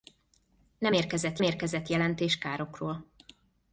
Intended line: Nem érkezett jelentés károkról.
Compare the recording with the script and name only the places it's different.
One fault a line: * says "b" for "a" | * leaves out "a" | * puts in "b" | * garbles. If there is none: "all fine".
* puts in "érkezett"